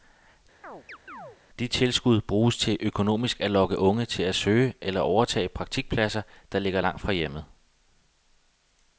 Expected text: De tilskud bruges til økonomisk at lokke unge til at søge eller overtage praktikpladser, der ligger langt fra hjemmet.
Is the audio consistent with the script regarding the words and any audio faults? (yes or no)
no